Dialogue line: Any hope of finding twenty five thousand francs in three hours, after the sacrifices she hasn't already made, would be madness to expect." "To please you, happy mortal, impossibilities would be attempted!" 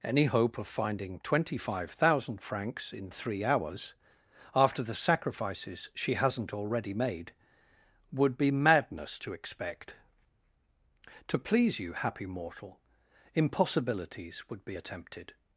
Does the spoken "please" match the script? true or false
true